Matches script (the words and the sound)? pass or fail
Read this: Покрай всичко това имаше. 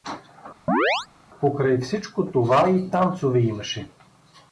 fail